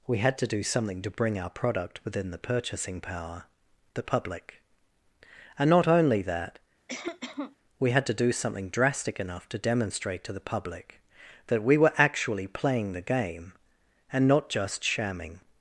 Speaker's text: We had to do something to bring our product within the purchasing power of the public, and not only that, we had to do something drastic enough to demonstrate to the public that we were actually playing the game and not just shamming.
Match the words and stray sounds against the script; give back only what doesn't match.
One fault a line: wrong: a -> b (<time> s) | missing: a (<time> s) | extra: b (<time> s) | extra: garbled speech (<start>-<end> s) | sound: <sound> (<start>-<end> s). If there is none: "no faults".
missing: of (3.5 s)
sound: cough (6.9-7.6 s)